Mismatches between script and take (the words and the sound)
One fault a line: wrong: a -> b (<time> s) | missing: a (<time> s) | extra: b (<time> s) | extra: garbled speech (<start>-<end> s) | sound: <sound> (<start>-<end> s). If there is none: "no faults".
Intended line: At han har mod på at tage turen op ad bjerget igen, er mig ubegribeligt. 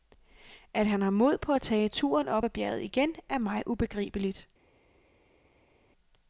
no faults